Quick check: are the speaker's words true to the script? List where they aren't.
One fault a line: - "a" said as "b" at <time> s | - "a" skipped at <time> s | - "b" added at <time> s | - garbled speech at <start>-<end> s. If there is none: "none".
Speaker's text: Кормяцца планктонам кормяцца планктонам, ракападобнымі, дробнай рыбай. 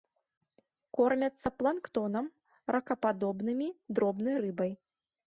- "кормяцца планктонам" skipped at 2.2 s